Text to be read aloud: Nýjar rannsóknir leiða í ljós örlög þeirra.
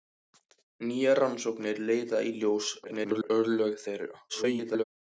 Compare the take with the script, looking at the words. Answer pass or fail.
fail